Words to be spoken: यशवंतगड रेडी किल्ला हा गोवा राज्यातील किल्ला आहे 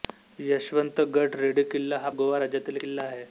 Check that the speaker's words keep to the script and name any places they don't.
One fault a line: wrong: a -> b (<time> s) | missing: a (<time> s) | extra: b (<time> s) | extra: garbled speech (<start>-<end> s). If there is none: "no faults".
no faults